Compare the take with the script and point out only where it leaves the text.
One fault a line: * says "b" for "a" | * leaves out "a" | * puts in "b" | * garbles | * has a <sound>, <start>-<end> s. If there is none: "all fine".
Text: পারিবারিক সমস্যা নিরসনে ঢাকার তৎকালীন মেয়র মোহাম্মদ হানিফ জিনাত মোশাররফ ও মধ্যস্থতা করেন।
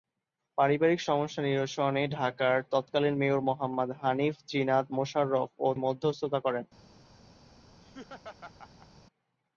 * has a laugh, 7.8-8.9 s